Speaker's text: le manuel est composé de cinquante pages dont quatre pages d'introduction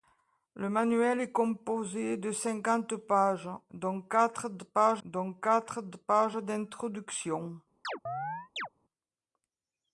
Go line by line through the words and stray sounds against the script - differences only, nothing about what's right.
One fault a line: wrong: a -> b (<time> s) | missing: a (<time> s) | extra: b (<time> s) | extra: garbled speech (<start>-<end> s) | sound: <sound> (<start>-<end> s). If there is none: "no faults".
extra: dont quatre pages (5.0 s)
sound: chirp (7.8-8.7 s)